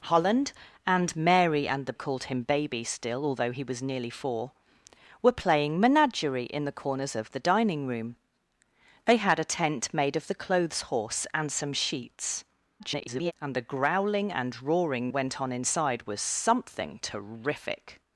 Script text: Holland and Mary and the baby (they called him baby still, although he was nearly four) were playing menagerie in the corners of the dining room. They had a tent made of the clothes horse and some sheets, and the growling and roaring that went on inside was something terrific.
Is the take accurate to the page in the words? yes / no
no